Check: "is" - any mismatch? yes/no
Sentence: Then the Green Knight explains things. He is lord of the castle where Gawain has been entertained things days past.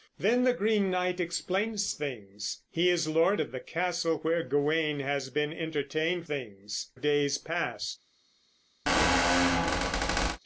no